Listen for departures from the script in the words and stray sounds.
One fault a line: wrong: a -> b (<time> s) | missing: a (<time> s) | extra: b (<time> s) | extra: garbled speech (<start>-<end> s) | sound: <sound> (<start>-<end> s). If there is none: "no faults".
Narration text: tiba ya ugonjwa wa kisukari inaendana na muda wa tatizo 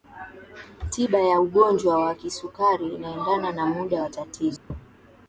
sound: dropout (4.6-4.7 s)